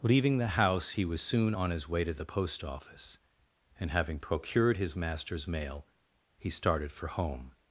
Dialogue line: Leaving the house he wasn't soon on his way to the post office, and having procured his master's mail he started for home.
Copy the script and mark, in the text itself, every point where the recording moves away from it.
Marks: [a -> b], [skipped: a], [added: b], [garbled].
Leaving the house he [wasn't -> was] soon on his way to the post office, and having procured his master's mail he started for home.